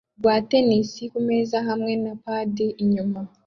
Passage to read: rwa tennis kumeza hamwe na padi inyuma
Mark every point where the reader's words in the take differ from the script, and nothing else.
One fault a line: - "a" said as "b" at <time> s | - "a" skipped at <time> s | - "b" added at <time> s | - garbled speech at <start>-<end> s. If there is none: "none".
none